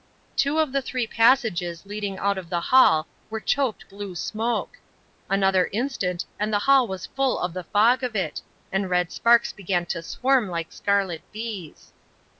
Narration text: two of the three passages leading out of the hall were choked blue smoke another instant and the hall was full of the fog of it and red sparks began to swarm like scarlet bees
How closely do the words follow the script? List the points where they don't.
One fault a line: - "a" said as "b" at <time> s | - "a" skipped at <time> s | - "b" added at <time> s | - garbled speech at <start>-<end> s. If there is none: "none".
none